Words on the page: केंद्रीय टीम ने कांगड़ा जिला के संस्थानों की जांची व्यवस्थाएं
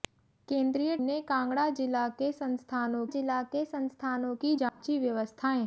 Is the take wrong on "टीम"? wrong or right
wrong